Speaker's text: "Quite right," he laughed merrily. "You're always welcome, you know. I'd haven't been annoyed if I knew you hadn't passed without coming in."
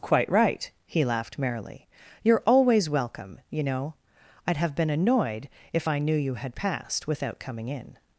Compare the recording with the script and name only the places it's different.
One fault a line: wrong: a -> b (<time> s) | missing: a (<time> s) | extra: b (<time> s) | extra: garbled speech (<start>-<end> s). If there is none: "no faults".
wrong: haven't -> have (4.6 s)
wrong: hadn't -> had (6.3 s)